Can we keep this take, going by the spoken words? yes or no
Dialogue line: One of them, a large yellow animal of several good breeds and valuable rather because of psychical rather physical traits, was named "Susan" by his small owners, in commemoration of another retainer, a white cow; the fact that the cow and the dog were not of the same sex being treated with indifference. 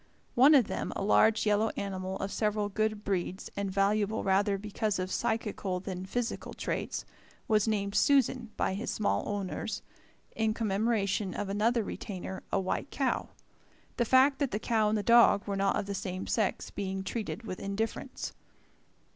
no